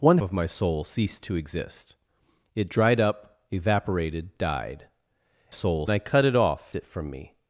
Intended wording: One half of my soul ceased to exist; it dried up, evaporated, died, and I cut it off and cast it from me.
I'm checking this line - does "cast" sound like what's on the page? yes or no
no